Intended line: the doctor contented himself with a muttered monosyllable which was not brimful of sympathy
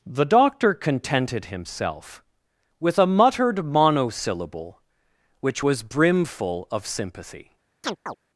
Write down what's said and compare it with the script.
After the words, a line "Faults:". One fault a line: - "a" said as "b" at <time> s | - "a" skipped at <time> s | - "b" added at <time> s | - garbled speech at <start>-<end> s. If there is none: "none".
the doctor contented himself with a muttered monosyllable which was brimful of sympathy
Faults:
- "not" skipped at 5.8 s